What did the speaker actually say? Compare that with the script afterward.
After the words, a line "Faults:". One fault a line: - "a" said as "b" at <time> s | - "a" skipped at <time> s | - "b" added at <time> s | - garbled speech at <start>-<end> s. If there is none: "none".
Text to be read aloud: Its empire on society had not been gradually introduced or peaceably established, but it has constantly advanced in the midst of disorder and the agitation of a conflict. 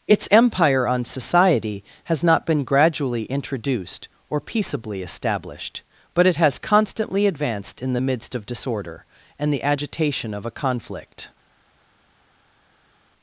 Its empire on society has not been gradually introduced or peaceably established, but it has constantly advanced in the midst of disorder and the agitation of a conflict.
Faults:
- "had" said as "has" at 2.0 s